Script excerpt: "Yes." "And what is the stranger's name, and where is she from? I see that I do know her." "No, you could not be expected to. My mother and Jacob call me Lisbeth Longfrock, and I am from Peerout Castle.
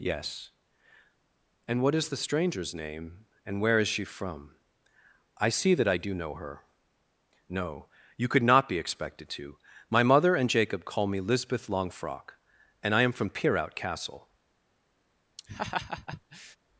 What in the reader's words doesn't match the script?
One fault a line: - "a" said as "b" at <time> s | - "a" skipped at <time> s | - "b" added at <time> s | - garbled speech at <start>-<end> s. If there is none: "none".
none